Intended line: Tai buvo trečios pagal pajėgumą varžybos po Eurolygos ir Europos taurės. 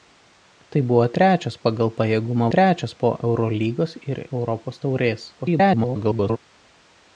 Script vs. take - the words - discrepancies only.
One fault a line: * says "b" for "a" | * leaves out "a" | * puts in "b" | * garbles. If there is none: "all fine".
* says "trečios" for "varžybos"
* garbles